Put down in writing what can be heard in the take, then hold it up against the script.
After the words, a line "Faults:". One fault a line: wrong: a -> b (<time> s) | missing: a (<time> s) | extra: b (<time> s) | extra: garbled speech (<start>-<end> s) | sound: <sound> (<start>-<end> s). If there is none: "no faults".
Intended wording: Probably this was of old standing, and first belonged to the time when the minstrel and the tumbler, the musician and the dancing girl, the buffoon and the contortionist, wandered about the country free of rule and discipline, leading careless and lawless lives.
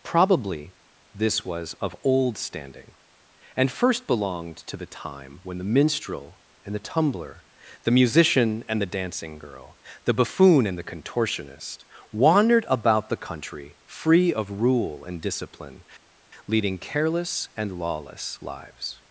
Probably this was of old standing, and first belonged to the time when the minstrel and the tumbler, the musician and the dancing girl, the buffoon and the contortionist, wandered about the country free of rule and discipline, leading careless and lawless lives.
Faults:
no faults